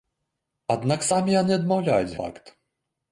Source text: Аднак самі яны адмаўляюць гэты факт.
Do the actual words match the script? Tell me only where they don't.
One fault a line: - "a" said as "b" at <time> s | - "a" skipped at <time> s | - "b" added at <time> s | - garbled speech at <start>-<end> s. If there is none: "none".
- "гэты" skipped at 2.2 s